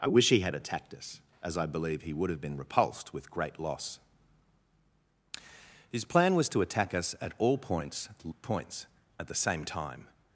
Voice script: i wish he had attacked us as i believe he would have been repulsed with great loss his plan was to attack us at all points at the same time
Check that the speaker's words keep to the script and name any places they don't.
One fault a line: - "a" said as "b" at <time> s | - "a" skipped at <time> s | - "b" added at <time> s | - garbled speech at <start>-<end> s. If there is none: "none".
- "points" added at 8.4 s